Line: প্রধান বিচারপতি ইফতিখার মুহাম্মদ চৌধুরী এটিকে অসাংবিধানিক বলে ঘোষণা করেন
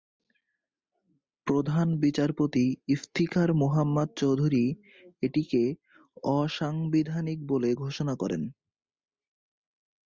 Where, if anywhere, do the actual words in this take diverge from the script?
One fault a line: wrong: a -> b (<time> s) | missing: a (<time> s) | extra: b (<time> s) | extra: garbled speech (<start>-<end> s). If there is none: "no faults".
no faults